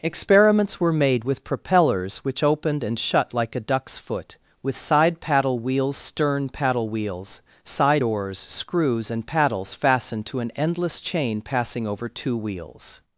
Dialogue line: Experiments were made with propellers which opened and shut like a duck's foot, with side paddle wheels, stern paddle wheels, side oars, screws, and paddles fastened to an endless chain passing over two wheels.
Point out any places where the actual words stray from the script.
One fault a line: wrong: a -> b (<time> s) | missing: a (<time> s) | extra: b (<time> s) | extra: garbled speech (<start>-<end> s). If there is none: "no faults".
no faults